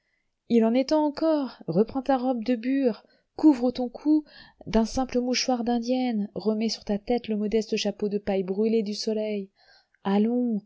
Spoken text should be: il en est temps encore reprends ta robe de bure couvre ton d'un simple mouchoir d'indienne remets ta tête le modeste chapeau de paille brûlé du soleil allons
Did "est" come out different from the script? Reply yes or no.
no